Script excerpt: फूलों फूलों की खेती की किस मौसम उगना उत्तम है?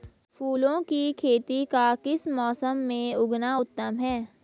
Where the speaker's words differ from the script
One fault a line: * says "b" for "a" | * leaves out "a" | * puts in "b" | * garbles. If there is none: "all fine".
* leaves out "फूलों"
* says "का" for "की"
* puts in "में"